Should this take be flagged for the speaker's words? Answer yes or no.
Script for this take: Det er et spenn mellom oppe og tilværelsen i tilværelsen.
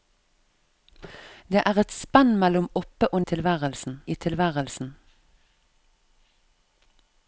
no